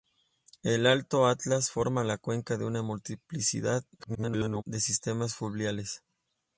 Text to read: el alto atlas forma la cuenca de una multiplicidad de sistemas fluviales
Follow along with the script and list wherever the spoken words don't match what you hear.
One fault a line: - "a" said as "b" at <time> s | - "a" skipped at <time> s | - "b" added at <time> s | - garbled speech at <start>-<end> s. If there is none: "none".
- garbled speech at 4.0-4.6 s